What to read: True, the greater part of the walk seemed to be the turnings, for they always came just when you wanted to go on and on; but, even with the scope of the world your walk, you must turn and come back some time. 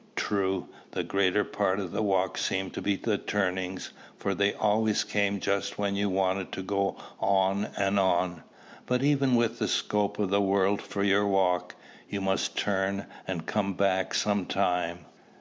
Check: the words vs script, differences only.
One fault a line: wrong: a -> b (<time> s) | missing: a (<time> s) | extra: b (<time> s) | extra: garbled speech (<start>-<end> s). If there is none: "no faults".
extra: for (10.8 s)